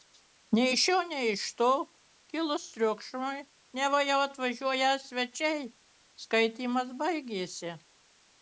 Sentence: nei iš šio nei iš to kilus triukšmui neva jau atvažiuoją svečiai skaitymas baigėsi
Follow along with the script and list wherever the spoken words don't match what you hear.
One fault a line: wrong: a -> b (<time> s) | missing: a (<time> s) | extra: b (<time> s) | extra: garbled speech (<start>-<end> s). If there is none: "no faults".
no faults